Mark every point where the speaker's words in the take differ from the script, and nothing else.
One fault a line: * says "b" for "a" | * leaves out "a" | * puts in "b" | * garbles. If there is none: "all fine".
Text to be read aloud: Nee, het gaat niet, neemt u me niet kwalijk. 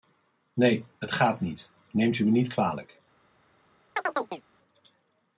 all fine